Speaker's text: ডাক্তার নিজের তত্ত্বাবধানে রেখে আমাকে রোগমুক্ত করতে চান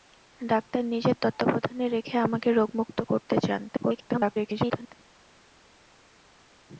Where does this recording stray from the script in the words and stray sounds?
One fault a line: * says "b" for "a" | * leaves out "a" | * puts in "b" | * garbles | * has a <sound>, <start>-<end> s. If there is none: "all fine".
* garbles